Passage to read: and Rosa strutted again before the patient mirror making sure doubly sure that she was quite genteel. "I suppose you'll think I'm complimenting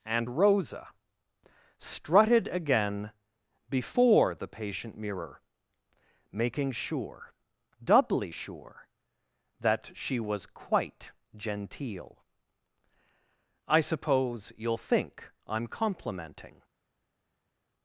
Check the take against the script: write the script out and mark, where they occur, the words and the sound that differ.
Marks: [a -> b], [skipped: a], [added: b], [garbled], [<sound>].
and Rosa strutted again before the patient mirror making sure doubly sure that she was quite genteel. "I suppose you'll think I'm complimenting